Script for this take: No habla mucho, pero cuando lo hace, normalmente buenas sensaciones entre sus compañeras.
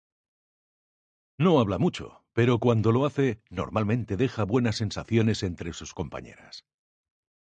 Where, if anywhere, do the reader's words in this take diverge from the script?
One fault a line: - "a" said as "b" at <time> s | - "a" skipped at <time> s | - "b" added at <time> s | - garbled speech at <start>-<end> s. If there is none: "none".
- "deja" added at 4.2 s